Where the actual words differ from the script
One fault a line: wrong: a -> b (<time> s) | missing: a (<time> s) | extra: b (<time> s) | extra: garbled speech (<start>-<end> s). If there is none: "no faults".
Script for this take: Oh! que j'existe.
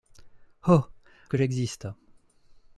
no faults